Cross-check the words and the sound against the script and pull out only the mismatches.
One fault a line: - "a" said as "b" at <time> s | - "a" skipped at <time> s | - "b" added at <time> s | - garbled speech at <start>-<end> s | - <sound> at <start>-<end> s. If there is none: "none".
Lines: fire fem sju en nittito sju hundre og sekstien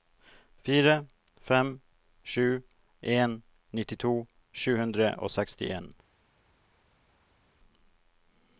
none